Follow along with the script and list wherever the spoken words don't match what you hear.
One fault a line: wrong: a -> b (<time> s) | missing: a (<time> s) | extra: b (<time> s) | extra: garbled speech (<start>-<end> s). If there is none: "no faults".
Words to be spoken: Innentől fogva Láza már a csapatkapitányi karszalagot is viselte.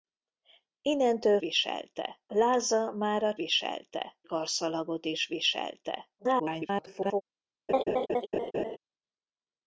wrong: fogva -> viselte (1.4 s)
wrong: csapatkapitányi -> viselte (3.3 s)
extra: garbled speech (6.2-7.2 s)